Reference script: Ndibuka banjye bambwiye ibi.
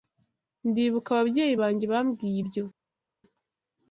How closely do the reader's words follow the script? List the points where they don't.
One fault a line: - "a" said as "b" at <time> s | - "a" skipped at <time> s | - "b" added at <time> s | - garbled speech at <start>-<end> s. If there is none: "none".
- "ababyeyi" added at 1.1 s
- "ibi" said as "ibyo" at 2.4 s